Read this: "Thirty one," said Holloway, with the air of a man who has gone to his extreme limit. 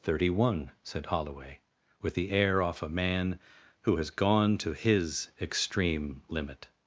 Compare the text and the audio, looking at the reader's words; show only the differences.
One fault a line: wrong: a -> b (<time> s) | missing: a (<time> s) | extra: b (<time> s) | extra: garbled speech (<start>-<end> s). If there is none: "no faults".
wrong: of -> off (2.6 s)